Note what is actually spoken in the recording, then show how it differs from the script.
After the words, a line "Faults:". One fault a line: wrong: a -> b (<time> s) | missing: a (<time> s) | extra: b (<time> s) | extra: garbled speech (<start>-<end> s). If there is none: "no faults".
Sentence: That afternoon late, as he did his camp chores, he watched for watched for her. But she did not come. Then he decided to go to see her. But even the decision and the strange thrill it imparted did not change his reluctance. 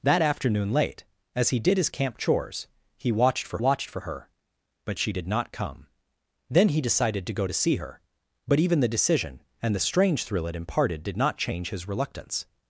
That afternoon late, as he did his camp chores, he watched for watched for her. But she did not come. Then he decided to go to see her. But even the decision and the strange thrill it imparted did not change his reluctance.
Faults:
no faults